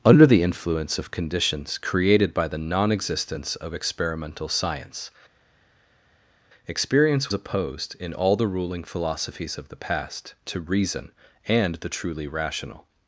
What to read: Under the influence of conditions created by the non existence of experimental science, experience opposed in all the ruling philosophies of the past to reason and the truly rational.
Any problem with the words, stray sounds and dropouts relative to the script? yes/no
no